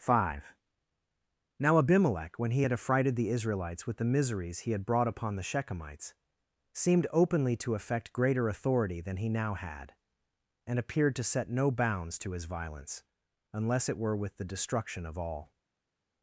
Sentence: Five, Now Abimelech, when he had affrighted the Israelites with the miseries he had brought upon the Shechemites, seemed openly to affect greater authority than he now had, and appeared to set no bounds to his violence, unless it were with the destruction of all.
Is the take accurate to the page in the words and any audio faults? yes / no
yes